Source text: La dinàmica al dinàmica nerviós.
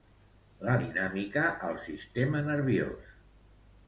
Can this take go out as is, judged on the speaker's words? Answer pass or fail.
fail